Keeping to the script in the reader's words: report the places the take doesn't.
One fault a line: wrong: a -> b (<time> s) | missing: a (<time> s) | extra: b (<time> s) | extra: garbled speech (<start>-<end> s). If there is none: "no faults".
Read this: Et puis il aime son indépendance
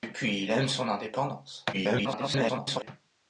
extra: garbled speech (1.7-2.9 s)